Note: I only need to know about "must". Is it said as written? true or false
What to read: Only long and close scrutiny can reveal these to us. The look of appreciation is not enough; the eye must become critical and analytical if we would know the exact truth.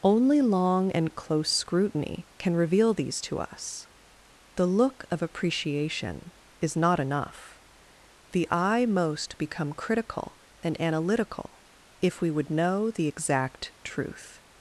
false